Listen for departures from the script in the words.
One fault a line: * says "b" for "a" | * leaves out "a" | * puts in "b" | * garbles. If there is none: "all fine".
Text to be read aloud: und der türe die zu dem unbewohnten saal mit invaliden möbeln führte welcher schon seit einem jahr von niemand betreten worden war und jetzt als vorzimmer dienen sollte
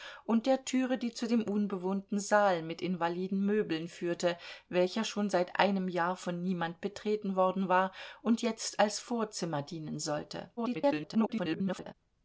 * garbles